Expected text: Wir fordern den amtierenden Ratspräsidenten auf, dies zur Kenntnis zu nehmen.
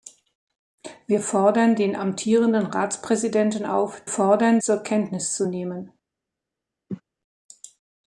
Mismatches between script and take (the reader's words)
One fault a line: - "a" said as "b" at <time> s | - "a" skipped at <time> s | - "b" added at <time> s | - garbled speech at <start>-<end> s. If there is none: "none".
- "dies" said as "fordern" at 4.1 s